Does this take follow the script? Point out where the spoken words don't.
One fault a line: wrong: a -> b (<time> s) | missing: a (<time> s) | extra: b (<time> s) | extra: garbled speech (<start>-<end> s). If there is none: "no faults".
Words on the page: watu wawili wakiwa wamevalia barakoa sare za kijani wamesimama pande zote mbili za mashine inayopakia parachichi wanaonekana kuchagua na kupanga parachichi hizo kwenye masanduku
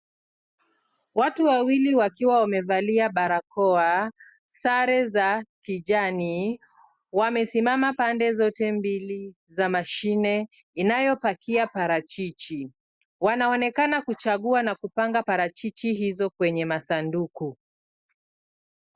no faults